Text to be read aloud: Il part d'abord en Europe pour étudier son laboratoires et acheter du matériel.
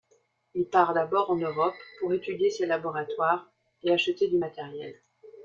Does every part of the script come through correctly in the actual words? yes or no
no